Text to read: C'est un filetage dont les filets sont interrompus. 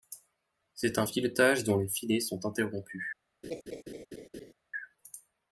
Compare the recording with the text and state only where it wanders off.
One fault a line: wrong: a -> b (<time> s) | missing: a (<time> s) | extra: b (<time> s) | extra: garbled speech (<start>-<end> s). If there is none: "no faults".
no faults